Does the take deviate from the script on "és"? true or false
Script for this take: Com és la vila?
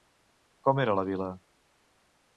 true